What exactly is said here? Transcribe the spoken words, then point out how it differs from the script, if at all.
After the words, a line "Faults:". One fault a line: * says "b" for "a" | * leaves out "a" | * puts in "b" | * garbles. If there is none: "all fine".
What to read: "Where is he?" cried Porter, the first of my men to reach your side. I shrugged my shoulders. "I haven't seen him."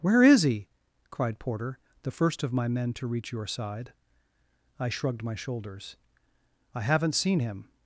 "Where is he?" cried Porter, the first of my men to reach your side. I shrugged my shoulders. "I haven't seen him."
Faults:
all fine